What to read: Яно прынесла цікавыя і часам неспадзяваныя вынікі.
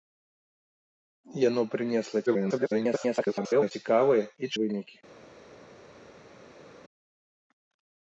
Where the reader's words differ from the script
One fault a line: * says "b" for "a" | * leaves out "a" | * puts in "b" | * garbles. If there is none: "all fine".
* garbles
* leaves out "часам неспадзяваныя"